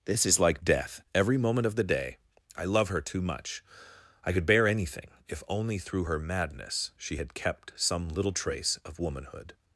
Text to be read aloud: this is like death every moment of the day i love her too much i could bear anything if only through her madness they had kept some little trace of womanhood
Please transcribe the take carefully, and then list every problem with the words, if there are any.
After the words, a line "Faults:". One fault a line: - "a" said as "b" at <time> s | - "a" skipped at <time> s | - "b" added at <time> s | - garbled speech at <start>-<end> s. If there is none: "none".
this is like death every moment of the day i love her too much i could bear anything if only through her madness she had kept some little trace of womanhood
Faults:
- "they" said as "she" at 7.0 s